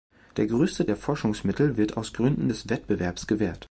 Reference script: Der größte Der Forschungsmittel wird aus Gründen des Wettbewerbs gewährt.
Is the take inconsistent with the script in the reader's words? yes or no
no